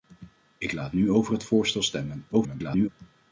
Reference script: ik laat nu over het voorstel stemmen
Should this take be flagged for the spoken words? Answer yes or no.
yes